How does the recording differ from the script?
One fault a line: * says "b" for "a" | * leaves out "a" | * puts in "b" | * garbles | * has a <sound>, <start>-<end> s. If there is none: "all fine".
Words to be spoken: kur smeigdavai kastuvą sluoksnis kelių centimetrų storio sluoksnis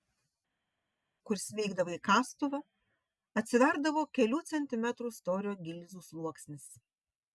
* says "atsiverdavo" for "sluoksnis"
* puts in "gilzių"